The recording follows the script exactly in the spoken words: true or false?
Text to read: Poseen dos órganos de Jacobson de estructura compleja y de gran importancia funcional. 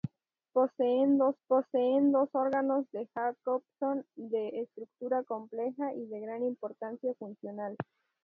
false